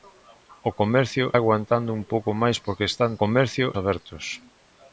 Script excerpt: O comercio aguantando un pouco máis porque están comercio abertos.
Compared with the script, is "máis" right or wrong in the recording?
right